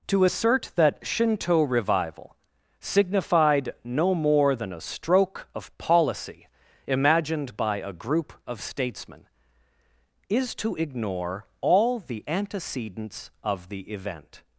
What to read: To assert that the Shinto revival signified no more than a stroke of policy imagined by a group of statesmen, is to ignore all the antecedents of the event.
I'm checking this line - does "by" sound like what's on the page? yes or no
yes